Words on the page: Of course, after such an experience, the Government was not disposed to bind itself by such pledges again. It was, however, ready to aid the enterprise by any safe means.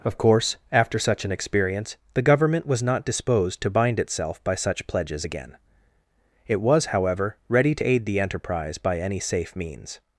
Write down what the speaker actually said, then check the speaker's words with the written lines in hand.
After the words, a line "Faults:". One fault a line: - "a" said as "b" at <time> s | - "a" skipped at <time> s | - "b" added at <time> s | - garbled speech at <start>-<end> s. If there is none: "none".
Of course, after such an experience, the Government was not disposed to bind itself by such pledges again. It was, however, ready to aid the enterprise by any safe means.
Faults:
none